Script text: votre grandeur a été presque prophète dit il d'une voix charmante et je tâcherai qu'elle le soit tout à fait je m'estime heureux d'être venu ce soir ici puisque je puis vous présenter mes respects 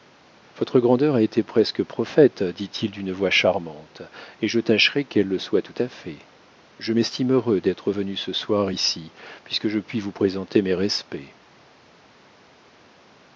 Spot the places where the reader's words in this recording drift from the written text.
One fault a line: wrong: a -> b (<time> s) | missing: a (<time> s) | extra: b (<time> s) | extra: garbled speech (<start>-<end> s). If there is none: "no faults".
no faults